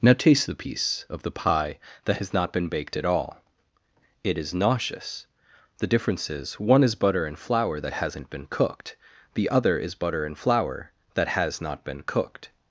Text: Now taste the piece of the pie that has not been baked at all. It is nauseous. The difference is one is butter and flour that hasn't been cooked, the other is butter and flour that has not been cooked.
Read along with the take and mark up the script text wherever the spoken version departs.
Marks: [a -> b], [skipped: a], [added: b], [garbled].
Now taste the piece of the pie that has not been baked at all. It is nauseous. The difference is one is butter and flour that hasn't been cooked, the other is butter and flour that has not been cooked.